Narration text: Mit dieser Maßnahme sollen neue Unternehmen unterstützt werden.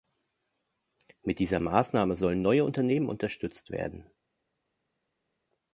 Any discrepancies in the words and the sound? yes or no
no